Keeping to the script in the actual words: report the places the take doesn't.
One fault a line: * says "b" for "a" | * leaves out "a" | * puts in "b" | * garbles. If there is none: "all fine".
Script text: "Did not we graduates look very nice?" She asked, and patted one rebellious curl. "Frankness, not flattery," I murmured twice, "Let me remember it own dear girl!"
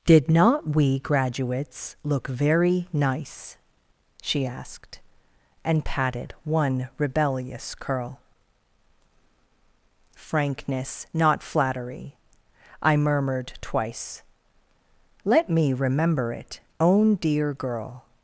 all fine